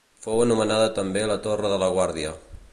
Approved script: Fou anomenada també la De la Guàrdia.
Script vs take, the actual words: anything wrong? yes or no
yes